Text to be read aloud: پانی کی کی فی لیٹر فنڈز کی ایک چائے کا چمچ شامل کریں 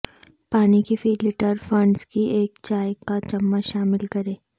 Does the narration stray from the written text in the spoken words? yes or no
yes